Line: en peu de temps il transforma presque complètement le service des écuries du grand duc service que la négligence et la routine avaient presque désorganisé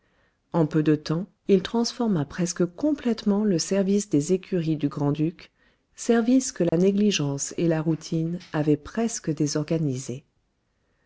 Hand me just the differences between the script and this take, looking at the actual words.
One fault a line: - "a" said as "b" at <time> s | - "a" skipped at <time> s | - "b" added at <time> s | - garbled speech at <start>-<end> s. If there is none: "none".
none